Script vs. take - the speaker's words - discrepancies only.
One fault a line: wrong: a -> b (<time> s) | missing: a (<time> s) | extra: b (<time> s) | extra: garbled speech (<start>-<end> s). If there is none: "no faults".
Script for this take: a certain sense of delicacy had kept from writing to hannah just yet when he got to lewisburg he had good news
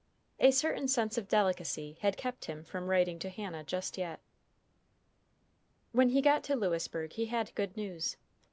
extra: him (2.4 s)